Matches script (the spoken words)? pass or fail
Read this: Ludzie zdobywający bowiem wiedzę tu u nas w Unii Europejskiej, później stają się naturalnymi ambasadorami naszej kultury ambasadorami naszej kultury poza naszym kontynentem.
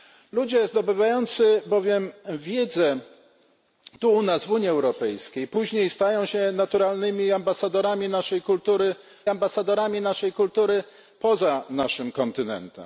pass